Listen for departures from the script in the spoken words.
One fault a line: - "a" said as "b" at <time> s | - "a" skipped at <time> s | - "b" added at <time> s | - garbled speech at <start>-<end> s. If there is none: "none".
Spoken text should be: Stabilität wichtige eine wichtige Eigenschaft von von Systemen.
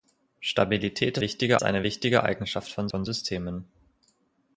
none